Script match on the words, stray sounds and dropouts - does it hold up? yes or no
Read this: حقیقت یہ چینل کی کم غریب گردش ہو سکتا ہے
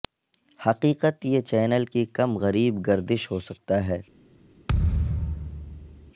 no